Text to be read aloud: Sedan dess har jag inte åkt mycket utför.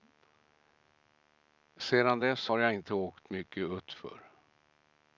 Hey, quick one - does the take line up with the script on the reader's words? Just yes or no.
yes